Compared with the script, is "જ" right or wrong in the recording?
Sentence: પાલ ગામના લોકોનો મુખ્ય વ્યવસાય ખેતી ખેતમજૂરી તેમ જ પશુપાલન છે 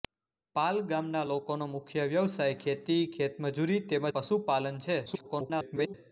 wrong